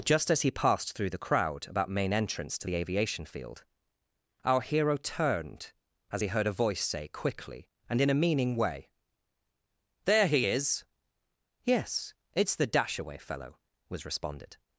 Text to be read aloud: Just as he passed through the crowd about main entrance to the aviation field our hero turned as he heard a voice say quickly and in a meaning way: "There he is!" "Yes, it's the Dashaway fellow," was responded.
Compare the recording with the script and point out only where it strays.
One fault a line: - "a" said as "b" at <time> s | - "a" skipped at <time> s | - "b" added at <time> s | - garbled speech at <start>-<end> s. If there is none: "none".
none